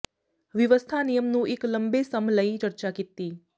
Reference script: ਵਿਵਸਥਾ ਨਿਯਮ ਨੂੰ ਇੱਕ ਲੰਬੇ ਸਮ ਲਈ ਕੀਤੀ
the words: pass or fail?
fail